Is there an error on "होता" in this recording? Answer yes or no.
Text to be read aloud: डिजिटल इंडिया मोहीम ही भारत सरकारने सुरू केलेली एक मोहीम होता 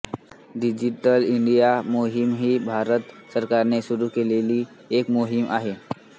yes